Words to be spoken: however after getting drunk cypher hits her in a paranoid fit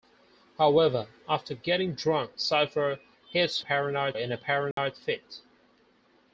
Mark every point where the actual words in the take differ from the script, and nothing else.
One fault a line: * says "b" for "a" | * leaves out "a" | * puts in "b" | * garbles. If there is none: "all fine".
* says "paranoid" for "her"